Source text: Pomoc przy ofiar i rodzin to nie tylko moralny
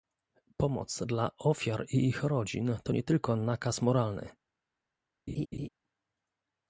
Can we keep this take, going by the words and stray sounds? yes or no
no